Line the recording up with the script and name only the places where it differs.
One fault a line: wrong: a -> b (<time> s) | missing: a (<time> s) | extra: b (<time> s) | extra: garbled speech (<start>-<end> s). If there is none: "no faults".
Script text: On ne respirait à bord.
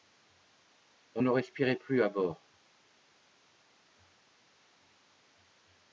extra: plus (1.7 s)